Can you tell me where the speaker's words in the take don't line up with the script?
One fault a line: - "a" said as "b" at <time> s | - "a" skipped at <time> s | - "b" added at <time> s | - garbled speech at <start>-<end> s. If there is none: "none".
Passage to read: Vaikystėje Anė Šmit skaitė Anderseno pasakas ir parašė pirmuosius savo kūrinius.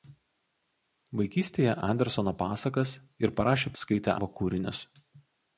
- "Anė Šmit skaitė" skipped at 1.8 s
- "pirmuosius" said as "skaitė" at 3.8 s